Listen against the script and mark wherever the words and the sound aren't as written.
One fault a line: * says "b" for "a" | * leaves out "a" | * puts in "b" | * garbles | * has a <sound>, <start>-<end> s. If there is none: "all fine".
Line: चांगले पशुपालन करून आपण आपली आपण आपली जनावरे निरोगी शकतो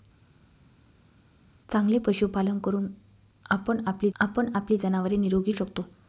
all fine